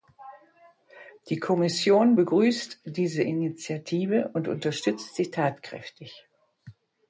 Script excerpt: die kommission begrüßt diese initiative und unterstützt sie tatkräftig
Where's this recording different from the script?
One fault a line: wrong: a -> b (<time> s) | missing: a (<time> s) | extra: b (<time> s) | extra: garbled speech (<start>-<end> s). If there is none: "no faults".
no faults